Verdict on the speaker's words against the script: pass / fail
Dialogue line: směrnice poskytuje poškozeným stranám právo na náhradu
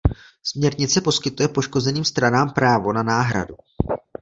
pass